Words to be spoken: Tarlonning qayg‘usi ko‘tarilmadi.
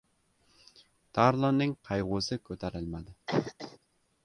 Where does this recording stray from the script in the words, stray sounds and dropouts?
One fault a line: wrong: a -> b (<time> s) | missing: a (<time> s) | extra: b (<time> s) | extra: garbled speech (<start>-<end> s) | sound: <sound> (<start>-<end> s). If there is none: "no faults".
sound: cough (3.3-3.8 s)